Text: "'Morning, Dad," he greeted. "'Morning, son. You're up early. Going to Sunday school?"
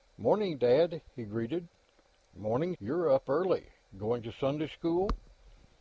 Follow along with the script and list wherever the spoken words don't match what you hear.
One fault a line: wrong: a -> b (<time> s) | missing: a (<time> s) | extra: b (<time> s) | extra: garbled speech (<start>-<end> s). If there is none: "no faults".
missing: son (2.8 s)